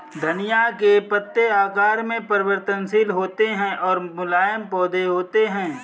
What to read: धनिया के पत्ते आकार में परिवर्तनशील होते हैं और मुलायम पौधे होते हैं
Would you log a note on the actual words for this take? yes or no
no